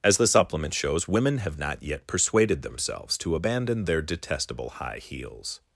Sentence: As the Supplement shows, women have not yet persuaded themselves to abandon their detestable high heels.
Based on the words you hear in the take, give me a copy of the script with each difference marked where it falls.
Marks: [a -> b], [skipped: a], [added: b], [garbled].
As the Supplement shows, women have not yet persuaded themselves to abandon their detestable high heels.